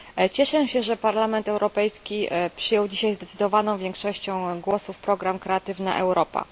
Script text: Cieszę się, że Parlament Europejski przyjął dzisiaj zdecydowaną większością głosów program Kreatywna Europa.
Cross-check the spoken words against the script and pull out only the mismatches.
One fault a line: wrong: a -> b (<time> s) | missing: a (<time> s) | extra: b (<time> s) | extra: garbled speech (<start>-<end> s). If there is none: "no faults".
no faults